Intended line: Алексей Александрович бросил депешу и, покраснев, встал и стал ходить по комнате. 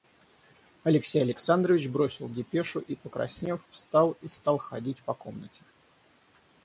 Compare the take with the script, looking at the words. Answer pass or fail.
pass